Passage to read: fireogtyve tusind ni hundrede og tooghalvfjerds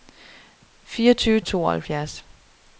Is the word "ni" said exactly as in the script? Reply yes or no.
no